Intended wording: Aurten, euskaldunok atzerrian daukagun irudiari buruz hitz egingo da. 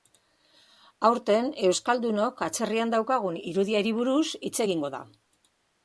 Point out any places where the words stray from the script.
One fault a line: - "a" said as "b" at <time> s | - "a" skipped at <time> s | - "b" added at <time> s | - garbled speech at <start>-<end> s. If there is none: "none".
none